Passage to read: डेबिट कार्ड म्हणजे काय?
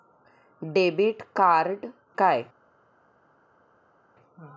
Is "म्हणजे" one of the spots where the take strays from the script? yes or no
yes